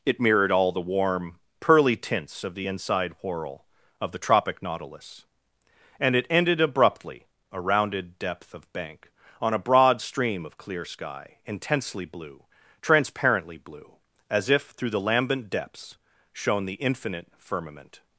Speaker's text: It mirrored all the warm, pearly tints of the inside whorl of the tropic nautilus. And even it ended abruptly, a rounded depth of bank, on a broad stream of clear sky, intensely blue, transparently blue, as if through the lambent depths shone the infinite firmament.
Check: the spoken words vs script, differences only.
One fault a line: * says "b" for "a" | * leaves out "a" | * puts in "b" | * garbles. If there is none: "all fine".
* leaves out "even"